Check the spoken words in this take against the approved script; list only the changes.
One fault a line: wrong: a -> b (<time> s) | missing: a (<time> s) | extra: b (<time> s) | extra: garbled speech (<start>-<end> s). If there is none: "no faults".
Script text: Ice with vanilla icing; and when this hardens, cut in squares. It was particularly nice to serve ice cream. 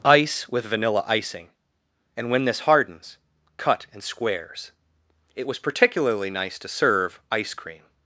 no faults